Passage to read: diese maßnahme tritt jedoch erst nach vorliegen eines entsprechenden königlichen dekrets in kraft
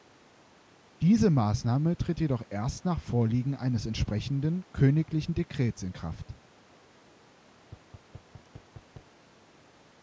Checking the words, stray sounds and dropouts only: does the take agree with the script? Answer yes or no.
no